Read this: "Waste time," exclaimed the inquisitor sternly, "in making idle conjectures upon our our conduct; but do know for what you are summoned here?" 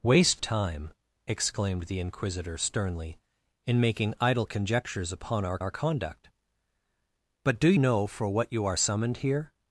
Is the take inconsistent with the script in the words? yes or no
no